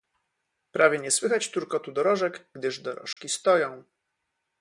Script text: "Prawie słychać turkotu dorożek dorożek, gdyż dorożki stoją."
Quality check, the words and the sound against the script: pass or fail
fail